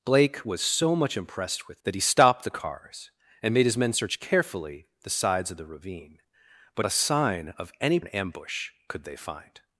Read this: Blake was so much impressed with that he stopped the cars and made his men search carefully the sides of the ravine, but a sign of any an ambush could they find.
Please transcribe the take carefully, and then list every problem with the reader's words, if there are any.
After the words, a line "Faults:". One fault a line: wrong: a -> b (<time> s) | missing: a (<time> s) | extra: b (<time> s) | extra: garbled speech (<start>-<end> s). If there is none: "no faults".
Blake was so much impressed with that he stopped the cars and made his men search carefully the sides of the ravine, but a sign of any an ambush could they find.
Faults:
no faults